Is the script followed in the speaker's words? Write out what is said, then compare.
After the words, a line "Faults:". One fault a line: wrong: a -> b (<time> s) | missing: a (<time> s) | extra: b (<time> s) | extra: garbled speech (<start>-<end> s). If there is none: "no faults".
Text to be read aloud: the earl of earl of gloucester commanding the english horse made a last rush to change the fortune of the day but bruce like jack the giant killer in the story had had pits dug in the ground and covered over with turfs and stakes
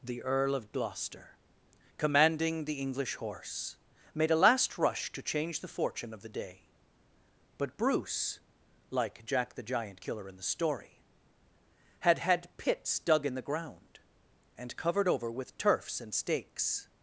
the earl of gloucester commanding the english horse made a last rush to change the fortune of the day but bruce like jack the giant killer in the story had had pits dug in the ground and covered over with turfs and stakes
Faults:
missing: earl of (0.7 s)